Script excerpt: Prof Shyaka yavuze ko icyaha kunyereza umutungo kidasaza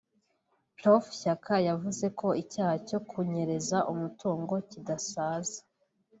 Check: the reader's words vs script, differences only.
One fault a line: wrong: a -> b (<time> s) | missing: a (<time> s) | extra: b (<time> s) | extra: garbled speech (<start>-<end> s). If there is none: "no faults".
extra: cyo (2.9 s)